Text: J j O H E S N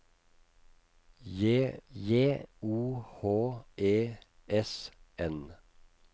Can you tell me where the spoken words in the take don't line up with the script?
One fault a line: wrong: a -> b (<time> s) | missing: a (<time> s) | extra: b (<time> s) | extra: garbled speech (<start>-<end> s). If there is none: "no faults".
no faults